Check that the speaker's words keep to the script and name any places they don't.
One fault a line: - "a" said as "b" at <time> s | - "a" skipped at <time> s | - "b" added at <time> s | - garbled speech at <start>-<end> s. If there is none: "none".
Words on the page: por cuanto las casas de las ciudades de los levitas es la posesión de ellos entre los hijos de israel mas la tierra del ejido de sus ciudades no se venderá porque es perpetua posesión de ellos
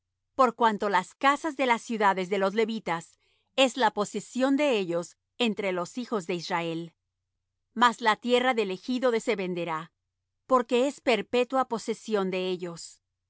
- "sus ciudades no" skipped at 9.2 s